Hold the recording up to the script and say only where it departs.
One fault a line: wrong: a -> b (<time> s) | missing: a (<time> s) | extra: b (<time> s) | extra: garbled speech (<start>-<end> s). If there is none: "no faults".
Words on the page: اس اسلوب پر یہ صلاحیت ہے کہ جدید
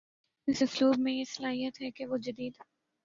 wrong: پر -> میں (1.0 s)
extra: وہ (2.1 s)